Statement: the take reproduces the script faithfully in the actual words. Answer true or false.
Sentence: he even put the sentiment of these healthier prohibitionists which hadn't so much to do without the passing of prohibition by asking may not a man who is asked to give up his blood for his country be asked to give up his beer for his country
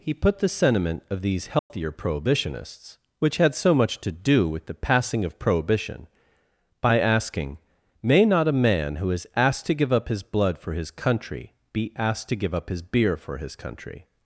false